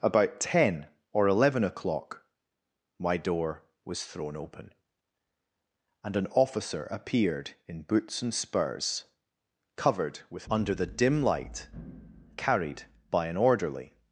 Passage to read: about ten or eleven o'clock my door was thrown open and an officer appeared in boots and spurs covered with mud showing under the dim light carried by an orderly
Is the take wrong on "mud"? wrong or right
wrong